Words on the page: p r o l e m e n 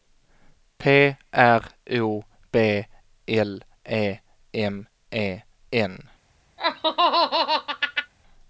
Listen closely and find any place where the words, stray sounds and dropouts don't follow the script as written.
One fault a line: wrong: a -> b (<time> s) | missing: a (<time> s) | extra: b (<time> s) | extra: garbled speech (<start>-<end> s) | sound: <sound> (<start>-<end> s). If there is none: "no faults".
extra: b (2.5 s)
sound: laugh (6.6-8.1 s)